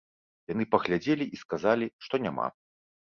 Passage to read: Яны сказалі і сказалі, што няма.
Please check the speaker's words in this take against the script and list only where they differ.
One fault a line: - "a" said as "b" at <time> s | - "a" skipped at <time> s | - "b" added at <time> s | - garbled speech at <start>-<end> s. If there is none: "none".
- "сказалі" said as "паглядзелі" at 0.8 s